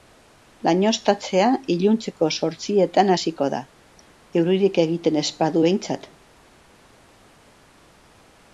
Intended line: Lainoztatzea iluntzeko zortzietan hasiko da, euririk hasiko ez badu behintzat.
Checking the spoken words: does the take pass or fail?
fail